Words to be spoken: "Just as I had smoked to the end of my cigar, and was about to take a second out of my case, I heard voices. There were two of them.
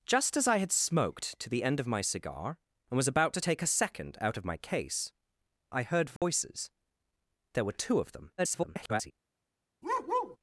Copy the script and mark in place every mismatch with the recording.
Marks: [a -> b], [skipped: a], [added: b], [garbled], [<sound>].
"Just as I had smoked to the end of my cigar, and was about to take a second out of my case, I heard voices. [dropout] There were two of them. [garbled] [bark]